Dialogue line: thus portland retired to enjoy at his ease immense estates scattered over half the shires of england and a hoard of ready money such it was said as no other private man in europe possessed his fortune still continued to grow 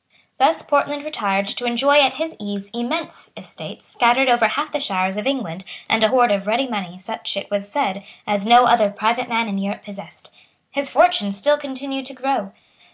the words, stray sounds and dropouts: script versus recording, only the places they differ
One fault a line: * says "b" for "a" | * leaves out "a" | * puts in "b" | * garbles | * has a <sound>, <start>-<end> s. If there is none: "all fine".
all fine